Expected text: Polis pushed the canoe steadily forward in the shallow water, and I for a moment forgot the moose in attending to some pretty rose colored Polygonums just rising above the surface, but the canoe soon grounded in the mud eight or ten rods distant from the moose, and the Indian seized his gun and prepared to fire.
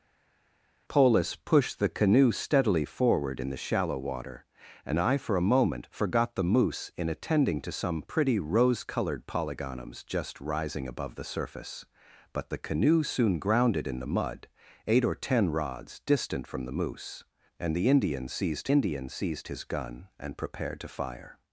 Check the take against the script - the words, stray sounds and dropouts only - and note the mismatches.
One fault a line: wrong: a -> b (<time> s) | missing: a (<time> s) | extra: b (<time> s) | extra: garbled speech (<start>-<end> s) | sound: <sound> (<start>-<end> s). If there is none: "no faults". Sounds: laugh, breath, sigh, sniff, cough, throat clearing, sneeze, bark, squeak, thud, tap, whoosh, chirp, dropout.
extra: Indian seized (18.7 s)